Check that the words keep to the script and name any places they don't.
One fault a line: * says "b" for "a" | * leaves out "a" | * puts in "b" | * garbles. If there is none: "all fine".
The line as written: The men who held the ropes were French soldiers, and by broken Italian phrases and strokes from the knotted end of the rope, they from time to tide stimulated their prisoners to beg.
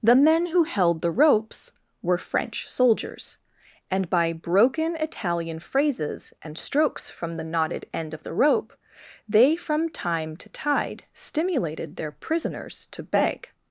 all fine